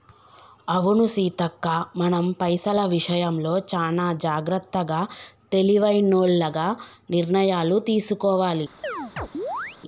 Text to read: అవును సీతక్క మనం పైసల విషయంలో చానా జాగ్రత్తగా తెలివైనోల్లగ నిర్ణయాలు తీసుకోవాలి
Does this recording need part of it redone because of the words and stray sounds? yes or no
yes